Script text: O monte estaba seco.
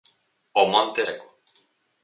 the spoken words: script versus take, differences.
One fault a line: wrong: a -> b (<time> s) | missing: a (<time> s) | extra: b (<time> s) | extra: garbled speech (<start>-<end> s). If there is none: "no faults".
missing: estaba (1.0 s)